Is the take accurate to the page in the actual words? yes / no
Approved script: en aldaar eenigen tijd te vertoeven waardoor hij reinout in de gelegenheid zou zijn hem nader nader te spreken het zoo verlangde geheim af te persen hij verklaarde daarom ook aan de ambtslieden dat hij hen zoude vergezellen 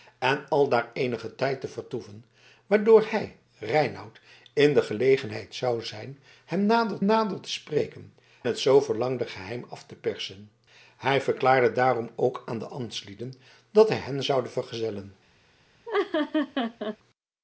yes